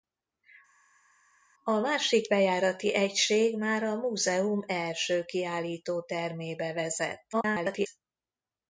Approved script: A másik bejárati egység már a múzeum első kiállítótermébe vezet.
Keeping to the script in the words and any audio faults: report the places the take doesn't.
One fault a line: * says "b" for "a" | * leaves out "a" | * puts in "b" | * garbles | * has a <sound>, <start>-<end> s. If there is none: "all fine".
* garbles